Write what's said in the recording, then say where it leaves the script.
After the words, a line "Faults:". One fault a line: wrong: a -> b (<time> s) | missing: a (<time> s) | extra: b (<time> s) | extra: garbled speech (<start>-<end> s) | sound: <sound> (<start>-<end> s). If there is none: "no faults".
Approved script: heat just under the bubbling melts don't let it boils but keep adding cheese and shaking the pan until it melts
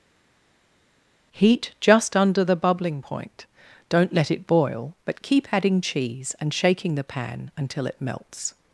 heat just under the bubbling point don't let it boil but keep adding cheese and shaking the pan until it melts
Faults:
wrong: melts -> point (3.0 s)
wrong: boils -> boil (4.5 s)